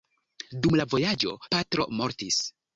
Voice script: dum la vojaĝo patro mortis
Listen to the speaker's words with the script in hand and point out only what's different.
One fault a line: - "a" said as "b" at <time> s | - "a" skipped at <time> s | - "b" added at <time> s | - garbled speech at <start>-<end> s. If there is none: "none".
none